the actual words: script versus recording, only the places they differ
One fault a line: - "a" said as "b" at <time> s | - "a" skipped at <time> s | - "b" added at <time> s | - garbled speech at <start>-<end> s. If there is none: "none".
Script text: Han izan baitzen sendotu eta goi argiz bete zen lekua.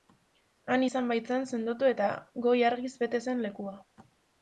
none